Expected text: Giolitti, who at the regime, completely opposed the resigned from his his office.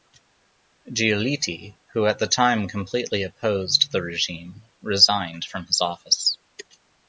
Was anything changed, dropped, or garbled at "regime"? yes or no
yes